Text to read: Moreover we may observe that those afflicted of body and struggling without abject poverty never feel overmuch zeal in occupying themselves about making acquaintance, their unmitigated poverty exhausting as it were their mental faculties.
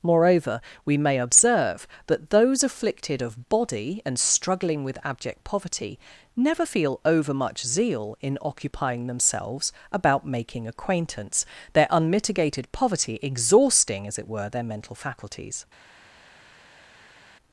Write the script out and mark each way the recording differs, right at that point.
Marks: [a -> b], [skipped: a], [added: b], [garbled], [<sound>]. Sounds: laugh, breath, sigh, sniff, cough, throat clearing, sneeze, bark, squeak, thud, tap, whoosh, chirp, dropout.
Moreover we may observe that those afflicted of body and struggling [without -> with] abject poverty never feel overmuch zeal in occupying themselves about making acquaintance, their unmitigated poverty exhausting as it were their mental faculties.